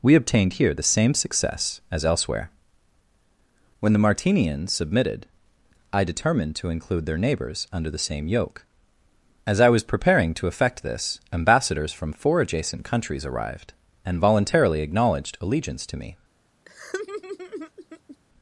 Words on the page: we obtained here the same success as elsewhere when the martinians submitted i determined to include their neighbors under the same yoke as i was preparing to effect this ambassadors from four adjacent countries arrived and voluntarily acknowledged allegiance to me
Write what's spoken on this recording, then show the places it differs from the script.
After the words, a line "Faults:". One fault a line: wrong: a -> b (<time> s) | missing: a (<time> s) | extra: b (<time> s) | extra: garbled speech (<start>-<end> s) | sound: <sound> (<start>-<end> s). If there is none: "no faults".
we obtained here the same success as elsewhere when the martinians submitted i determined to include their neighbors under the same yoke as i was preparing to effect this ambassadors from four adjacent countries arrived and voluntarily acknowledged allegiance to me
Faults:
sound: laugh (16.7-18.2 s)